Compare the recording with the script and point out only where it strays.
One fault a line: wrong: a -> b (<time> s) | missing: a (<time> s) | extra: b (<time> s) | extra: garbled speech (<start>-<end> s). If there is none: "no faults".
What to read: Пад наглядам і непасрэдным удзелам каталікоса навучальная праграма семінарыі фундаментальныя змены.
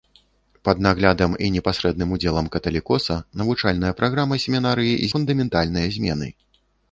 no faults